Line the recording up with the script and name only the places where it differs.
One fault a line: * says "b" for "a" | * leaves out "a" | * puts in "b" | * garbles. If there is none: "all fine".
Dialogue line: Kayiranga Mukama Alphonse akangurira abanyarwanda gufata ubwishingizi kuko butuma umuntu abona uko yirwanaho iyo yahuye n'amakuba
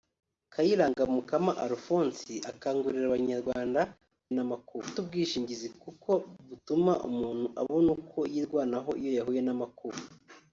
* says "n'amakuba" for "gufata"